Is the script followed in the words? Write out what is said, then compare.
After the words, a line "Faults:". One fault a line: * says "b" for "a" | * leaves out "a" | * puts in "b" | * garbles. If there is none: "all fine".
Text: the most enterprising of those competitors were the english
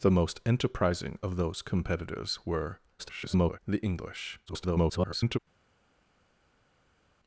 the most enterprising of those competitors were [garbled] the english [garbled]
Faults:
* garbles
* garbles